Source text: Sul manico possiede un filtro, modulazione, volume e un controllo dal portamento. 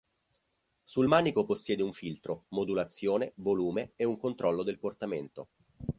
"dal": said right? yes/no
no